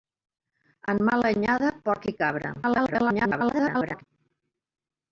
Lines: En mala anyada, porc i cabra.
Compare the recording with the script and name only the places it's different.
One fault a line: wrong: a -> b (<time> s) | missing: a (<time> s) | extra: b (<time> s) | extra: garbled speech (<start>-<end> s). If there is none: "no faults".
extra: garbled speech (2.6-4.0 s)